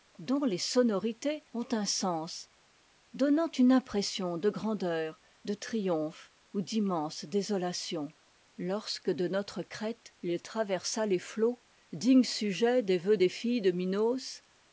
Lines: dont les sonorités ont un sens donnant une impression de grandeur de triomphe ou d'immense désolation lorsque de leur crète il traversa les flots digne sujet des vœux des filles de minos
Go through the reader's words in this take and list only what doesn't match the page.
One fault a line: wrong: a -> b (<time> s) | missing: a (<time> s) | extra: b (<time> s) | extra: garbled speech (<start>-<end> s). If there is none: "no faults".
wrong: leur -> notre (9.3 s)